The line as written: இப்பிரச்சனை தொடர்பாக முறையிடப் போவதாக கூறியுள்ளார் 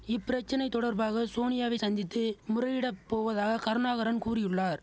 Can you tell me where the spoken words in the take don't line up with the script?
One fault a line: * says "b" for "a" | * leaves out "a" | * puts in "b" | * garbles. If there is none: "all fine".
* puts in "சோனியாவை சந்தித்து"
* puts in "கருணாகரன்"